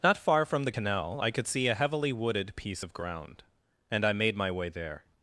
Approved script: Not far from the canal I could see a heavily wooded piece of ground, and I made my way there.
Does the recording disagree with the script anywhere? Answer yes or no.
no